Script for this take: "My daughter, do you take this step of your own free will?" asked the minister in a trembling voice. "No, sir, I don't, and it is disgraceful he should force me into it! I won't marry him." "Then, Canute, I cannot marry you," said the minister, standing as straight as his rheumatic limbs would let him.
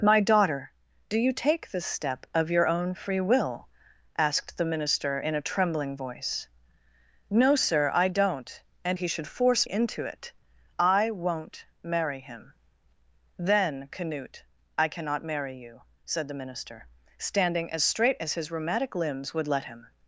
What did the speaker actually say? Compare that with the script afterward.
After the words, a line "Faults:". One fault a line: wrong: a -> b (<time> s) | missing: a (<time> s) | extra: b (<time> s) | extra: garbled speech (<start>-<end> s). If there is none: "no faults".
"My daughter, do you take this step of your own free will?" asked the minister in a trembling voice. "No, sir, I don't, and he should force into it! I won't marry him." "Then, Canute, I cannot marry you," said the minister, standing as straight as his rheumatic limbs would let him.
Faults:
missing: it is disgraceful (9.0 s)
missing: me (9.7 s)